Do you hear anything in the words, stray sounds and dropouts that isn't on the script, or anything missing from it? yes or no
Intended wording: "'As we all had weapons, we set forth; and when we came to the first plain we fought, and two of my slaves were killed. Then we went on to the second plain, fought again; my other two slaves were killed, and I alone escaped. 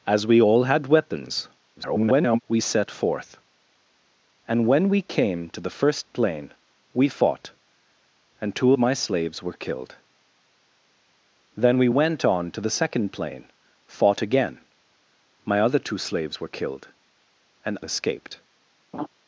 yes